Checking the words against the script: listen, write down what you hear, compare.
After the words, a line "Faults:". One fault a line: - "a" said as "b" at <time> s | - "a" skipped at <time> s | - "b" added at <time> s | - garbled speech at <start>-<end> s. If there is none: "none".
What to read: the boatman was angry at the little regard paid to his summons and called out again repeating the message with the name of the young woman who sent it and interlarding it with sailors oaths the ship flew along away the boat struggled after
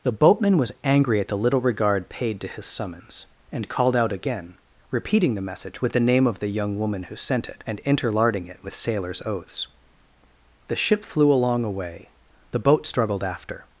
the boatman was angry at the little regard paid to his summons and called out again repeating the message with the name of the young woman who sent it and interlarding it with sailors oaths the ship flew along away the boat struggled after
Faults:
none